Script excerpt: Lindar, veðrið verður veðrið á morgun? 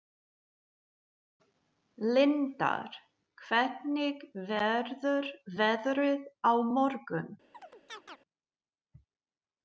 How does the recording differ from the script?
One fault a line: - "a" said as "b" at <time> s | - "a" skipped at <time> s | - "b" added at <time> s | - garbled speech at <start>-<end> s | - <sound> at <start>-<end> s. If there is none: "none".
- "veðrið" said as "hvernig" at 3.5 s
- chirp at 7.5-8.2 s